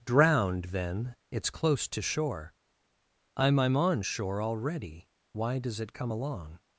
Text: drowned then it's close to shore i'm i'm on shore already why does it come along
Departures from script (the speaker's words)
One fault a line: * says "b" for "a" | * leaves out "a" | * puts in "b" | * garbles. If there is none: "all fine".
all fine